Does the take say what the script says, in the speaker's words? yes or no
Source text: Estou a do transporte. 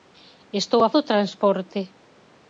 yes